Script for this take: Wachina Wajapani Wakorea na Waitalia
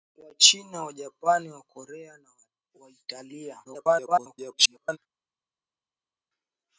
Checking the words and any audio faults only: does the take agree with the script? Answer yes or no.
no